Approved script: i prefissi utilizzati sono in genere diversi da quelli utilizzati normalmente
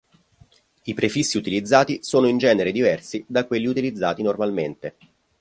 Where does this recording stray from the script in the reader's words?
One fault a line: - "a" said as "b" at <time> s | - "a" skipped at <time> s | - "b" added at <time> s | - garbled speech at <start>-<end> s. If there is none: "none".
none